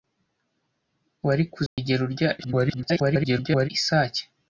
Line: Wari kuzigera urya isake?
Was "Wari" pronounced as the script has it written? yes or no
yes